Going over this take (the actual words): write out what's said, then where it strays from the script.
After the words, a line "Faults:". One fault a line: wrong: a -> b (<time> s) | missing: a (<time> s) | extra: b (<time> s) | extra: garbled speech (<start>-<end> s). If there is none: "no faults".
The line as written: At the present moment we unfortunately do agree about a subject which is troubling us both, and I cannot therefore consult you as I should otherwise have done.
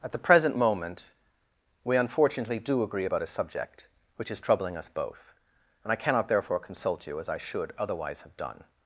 At the present moment we unfortunately do agree about a subject which is troubling us both, and I cannot therefore consult you as I should otherwise have done.
Faults:
no faults